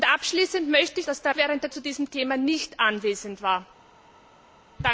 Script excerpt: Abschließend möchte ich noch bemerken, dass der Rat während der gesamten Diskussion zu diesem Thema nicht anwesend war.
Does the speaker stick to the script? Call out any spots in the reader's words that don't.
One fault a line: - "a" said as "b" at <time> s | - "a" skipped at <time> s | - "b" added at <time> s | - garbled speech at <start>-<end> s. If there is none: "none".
- "noch bemerken" skipped at 1.1 s
- "Rat" skipped at 1.3 s
- "gesamten Diskussion" skipped at 1.7 s